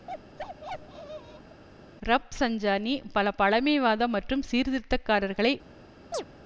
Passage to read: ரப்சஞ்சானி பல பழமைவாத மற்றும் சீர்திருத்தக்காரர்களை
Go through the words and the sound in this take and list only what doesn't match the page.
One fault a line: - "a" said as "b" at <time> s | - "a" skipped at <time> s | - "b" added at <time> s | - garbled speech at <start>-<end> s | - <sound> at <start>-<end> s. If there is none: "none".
- bark at 0.1-1.6 s
- chirp at 6.1-6.3 s